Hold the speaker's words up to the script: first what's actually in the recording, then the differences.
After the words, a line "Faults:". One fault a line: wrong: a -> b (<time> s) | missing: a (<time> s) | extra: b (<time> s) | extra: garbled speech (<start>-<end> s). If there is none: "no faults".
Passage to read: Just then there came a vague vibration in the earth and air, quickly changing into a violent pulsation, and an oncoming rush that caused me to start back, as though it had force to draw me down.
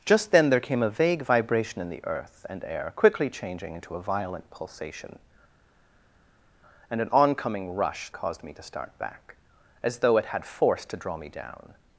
Just then there came a vague vibration in the earth and air, quickly changing into a violent pulsation, and an oncoming rush caused me to start back, as though it had force to draw me down.
Faults:
missing: that (8.1 s)